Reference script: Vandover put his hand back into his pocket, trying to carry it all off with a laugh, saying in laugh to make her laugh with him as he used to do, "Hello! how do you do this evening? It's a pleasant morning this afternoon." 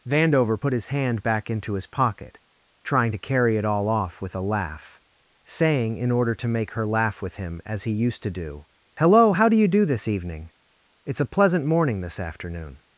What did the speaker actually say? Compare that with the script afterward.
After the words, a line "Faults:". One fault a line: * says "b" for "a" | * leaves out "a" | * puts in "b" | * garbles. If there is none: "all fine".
Vandover put his hand back into his pocket, trying to carry it all off with a laugh, saying in order to make her laugh with him as he used to do, "Hello! how do you do this evening? It's a pleasant morning this afternoon."
Faults:
* says "order" for "laugh"